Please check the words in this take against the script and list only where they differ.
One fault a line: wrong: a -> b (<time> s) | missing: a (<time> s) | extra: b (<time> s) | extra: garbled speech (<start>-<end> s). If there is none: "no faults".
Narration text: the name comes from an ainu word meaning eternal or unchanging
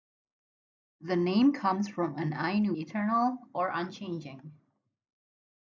missing: word meaning (2.7 s)